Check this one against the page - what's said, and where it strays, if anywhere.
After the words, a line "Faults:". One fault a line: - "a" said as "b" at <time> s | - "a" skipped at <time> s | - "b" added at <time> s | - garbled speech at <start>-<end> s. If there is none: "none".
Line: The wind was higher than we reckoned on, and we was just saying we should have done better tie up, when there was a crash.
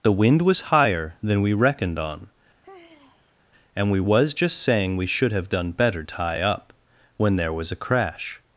The wind was higher than we reckoned on, and we was just saying we should have done better tie up, when there was a crash.
Faults:
none